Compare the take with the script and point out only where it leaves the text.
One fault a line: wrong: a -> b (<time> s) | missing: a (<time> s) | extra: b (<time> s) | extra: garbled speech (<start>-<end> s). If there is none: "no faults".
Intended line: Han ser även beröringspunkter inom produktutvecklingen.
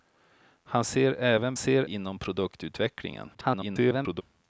wrong: beröringspunkter -> ser (1.5 s)
extra: garbled speech (3.3-4.2 s)